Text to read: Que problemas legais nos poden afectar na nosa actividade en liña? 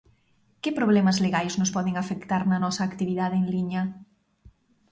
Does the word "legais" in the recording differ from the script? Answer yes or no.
no